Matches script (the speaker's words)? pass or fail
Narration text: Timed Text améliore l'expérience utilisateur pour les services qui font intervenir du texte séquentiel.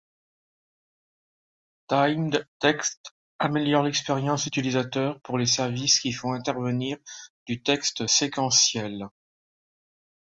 pass